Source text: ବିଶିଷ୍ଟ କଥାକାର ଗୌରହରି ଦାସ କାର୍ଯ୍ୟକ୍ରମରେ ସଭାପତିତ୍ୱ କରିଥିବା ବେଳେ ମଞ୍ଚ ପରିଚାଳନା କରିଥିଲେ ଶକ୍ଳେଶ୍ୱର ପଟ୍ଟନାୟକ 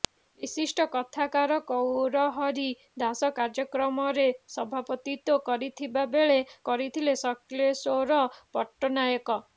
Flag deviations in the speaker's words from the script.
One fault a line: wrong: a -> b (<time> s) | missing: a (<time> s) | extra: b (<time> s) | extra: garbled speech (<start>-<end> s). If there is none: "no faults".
missing: ମଞ୍ଚ ପରିଚାଳନା (6.4 s)